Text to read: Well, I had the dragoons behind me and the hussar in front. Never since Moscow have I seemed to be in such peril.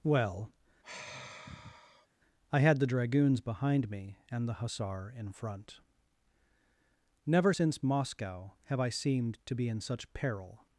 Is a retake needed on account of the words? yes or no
no